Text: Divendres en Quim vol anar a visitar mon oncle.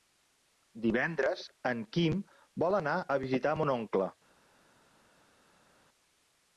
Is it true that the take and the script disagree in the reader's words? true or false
false